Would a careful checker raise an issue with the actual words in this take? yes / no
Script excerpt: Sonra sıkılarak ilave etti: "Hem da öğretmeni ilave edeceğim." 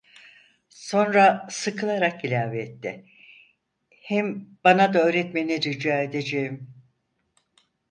yes